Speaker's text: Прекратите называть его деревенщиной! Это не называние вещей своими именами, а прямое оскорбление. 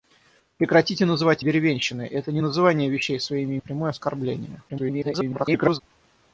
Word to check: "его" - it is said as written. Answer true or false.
false